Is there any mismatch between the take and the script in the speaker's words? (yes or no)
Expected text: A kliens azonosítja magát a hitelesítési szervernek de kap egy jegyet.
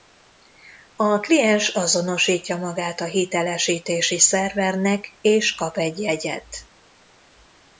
yes